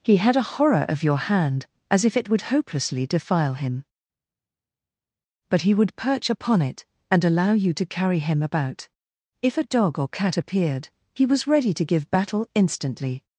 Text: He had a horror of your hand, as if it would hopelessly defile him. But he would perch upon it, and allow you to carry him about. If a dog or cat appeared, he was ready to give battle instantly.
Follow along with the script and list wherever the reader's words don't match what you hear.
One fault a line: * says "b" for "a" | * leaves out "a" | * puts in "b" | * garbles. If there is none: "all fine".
all fine